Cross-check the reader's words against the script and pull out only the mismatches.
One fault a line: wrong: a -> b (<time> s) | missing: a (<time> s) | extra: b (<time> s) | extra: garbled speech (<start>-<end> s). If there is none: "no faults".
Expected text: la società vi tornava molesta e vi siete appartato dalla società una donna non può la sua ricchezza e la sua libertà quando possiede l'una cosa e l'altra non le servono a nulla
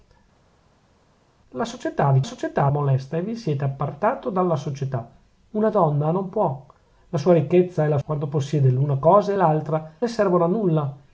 wrong: tornava -> società (2.2 s)
missing: sua libertà (8.0 s)
missing: non (9.9 s)